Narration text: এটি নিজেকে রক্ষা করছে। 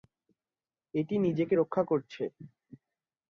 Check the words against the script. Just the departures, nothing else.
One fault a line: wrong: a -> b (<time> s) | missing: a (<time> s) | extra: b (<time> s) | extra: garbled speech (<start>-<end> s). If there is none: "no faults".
no faults